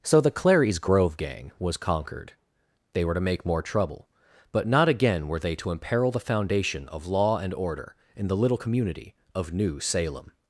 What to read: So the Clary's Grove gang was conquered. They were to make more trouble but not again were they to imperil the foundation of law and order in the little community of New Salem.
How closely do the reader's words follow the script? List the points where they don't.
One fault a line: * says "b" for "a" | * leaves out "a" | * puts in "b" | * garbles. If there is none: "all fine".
all fine